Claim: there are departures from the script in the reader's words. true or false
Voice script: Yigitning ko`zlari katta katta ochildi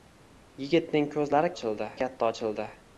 true